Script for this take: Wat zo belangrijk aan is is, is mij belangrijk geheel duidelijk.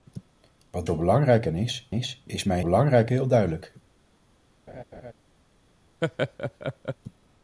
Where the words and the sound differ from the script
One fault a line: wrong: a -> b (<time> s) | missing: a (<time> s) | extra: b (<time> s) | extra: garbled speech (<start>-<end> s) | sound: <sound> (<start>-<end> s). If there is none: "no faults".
sound: laugh (4.7-5.1 s)
sound: laugh (6.0-7.0 s)